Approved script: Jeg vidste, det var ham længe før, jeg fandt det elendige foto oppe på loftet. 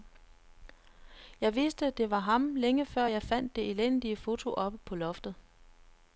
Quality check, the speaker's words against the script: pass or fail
pass